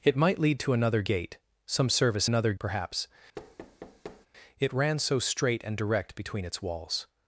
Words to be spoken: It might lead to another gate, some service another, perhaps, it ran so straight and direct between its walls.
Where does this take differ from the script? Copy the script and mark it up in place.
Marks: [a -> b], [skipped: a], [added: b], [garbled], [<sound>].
It might lead to another gate, some service another, perhaps, [thud] it ran so straight and direct between its walls.